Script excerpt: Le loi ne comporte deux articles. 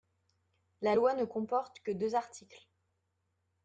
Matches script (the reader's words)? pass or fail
fail